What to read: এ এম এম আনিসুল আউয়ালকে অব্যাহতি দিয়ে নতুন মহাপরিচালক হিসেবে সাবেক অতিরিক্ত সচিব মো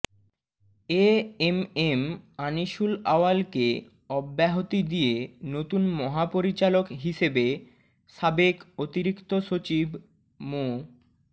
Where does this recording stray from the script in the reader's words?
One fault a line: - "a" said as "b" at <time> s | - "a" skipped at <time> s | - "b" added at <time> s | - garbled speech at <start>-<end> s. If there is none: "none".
none